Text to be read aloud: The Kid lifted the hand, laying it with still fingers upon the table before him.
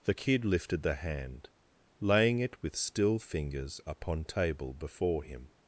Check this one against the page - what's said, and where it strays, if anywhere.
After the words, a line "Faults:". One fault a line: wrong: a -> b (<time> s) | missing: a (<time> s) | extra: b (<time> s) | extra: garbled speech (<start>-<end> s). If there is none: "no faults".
The Kid lifted the hand, laying it with still fingers upon table before him.
Faults:
missing: the (4.2 s)